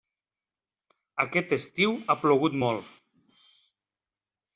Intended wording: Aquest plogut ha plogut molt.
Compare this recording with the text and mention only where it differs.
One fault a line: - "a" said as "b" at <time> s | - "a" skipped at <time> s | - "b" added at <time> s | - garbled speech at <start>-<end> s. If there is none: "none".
- "plogut" said as "estiu" at 1.6 s